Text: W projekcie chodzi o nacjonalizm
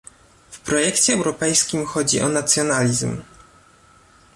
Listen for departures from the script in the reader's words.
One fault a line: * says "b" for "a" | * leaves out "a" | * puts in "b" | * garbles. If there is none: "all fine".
* puts in "europejskim"